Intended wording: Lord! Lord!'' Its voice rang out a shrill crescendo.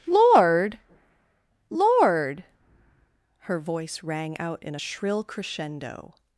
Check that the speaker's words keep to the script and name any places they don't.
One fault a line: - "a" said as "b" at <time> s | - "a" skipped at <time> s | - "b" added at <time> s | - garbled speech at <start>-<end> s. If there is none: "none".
- "Its" said as "Her" at 3.4 s
- "in" added at 4.6 s